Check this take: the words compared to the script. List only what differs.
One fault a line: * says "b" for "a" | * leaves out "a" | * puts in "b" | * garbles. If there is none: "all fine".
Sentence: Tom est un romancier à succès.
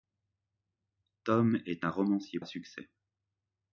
all fine